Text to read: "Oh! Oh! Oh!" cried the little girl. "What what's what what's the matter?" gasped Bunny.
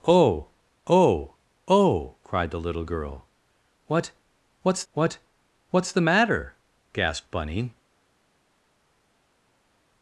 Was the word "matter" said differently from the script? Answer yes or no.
no